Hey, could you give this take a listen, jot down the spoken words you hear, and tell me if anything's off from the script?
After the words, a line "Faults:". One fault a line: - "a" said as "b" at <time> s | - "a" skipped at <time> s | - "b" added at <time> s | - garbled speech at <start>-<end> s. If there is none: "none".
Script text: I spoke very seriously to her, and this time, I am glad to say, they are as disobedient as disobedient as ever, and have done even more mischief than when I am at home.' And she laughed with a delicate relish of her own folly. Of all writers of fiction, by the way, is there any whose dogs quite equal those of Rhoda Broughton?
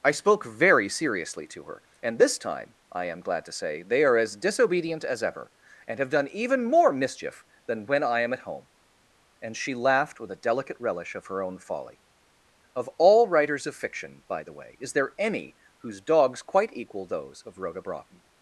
I spoke very seriously to her, and this time, I am glad to say, they are as disobedient as ever, and have done even more mischief than when I am at home.' And she laughed with a delicate relish of her own folly. Of all writers of fiction, by the way, is there any whose dogs quite equal those of Rhoda Broughton?
Faults:
- "disobedient as" skipped at 5.2 s